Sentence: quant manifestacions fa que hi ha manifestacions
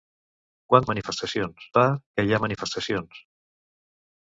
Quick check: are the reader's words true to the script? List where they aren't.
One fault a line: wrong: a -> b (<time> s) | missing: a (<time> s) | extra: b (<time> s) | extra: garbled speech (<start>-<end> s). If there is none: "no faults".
no faults